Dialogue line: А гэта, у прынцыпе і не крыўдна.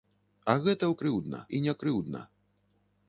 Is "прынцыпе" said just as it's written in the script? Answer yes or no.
no